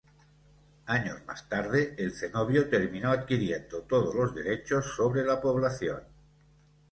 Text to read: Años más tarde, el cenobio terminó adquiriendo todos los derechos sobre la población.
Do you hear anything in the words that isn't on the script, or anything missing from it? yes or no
no